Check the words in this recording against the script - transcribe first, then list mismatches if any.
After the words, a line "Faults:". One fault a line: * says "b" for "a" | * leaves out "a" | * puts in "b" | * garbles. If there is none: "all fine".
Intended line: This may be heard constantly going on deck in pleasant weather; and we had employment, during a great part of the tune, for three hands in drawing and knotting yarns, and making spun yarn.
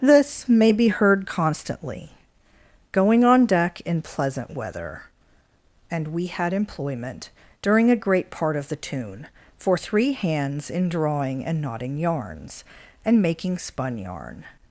This may be heard constantly going on deck in pleasant weather; and we had employment, during a great part of the tune, for three hands in drawing and knotting yarns, and making spun yarn.
Faults:
all fine